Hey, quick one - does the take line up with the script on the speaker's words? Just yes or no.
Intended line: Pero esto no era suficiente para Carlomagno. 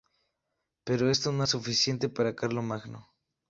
no